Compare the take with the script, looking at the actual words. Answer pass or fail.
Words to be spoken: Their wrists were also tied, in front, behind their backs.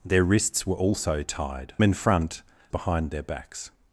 pass